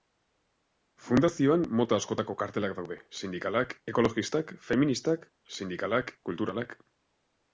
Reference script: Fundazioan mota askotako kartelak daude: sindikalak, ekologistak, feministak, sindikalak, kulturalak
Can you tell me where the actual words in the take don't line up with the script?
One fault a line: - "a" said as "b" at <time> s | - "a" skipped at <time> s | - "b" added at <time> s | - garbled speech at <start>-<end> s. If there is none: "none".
none